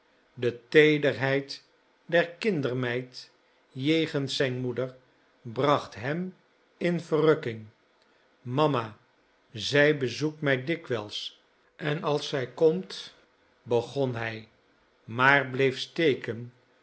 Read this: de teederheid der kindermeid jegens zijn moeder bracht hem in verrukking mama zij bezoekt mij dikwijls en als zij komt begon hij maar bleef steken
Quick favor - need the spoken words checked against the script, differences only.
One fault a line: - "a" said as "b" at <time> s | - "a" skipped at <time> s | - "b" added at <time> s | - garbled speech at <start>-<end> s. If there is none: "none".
none